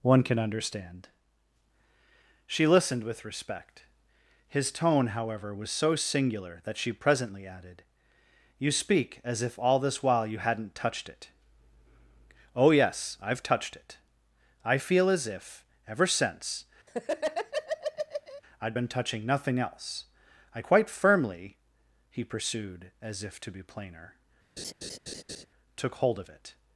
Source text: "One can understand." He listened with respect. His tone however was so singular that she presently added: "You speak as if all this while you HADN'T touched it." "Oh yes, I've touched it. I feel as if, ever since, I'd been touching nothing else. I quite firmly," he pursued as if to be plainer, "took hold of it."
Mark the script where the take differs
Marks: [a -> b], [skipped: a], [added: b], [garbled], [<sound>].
"One can understand." [He -> She] listened with respect. His tone however was so singular that she presently added: "You speak as if all this while you HADN'T touched it." "Oh yes, I've touched it. I feel as if, ever since, [laugh] I'd been touching nothing else. I quite firmly," he pursued as if to be plainer, [laugh] "took hold of it."